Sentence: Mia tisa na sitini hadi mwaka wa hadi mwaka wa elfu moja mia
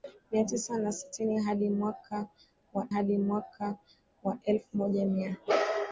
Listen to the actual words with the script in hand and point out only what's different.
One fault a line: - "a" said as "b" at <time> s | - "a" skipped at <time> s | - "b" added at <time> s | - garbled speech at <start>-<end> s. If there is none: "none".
none